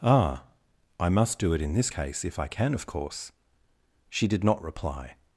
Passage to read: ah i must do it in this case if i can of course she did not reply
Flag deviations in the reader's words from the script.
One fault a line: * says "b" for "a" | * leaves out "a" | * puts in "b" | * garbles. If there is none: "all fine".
all fine